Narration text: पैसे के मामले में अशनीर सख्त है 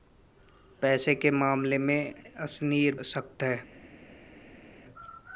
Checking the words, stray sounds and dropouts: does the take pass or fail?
pass